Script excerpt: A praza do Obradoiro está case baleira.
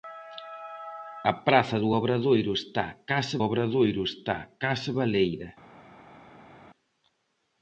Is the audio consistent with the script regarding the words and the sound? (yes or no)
no